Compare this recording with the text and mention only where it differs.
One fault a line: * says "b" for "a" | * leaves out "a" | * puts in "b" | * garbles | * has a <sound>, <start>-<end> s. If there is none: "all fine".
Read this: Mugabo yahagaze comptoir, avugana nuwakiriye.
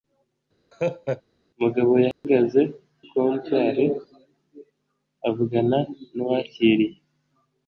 * has a laugh, 0.7-1.2 s
* has a dropout, 2.1-2.2 s